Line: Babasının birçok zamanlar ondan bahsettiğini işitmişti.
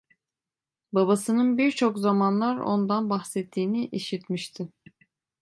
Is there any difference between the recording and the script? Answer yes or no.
no